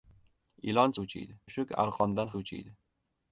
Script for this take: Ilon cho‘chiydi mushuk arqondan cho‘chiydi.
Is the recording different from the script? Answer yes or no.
no